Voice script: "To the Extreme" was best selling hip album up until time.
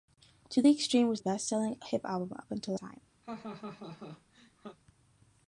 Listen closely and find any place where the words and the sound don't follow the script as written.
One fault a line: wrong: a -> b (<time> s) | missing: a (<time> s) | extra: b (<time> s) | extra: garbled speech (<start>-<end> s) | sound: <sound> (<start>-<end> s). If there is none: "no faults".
sound: laugh (3.2-4.8 s)